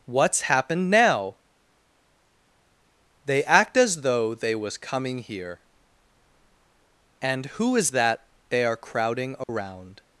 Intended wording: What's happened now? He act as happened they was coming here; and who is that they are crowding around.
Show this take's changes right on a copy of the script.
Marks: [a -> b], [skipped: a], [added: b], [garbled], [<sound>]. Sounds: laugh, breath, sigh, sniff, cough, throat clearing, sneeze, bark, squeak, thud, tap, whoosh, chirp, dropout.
What's happened now? [He -> They] act as [happened -> though] they was coming here; and who is that they are crowding around. [dropout]